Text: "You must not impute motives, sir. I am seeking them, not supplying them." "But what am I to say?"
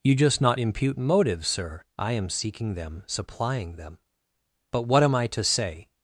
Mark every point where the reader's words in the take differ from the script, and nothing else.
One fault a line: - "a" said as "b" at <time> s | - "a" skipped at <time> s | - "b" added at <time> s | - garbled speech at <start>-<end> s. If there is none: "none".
- "must" said as "just" at 0.1 s
- "not" skipped at 3.0 s